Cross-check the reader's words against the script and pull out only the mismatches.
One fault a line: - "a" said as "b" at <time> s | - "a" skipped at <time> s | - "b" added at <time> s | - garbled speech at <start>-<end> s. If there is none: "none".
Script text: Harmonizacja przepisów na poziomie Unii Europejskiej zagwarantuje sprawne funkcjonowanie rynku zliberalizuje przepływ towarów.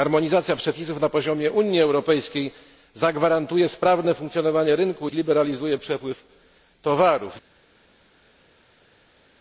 none